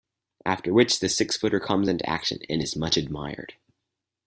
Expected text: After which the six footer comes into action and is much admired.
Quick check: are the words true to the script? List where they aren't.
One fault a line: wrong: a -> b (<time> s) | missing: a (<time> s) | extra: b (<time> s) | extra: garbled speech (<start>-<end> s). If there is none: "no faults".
no faults